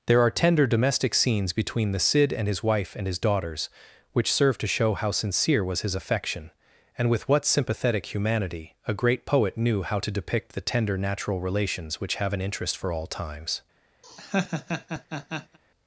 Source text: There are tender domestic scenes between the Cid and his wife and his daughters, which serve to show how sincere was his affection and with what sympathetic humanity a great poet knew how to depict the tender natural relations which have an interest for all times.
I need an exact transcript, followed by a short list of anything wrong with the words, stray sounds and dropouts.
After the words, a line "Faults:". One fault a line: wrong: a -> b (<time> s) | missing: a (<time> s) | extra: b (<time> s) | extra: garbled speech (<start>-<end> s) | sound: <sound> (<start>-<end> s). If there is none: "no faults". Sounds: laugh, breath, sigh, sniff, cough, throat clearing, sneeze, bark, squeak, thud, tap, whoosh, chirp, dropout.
There are tender domestic scenes between the Cid and his wife and his daughters, which serve to show how sincere was his affection and with what sympathetic humanity a great poet knew how to depict the tender natural relations which have an interest for all times.
Faults:
sound: laugh (14.0-15.6 s)